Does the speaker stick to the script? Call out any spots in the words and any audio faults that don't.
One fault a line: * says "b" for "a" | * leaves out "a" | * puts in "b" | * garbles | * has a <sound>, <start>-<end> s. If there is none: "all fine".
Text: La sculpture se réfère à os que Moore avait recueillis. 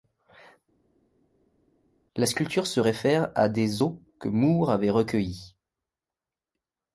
* puts in "des"